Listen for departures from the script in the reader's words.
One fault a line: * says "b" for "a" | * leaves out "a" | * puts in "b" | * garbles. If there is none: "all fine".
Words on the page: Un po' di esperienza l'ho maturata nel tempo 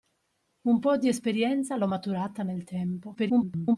* garbles